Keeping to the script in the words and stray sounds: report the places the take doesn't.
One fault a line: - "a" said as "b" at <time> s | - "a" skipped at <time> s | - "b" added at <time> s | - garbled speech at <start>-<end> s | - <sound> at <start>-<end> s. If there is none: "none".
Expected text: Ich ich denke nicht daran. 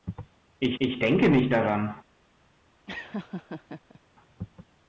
- laugh at 2.9-4.0 s